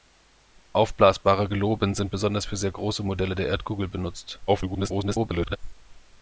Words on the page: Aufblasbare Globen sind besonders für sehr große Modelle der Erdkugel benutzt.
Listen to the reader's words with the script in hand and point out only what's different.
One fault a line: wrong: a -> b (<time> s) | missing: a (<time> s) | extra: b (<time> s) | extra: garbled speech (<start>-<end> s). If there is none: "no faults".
extra: garbled speech (4.5-5.6 s)